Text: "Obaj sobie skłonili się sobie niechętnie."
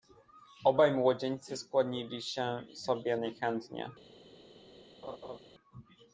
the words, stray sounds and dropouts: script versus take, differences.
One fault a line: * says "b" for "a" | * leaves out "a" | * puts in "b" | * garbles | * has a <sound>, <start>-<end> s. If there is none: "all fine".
* says "młodzieńcy" for "sobie"
* has a laugh, 5.0-5.4 s